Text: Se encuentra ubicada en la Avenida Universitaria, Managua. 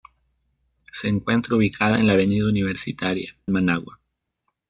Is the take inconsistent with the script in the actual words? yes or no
no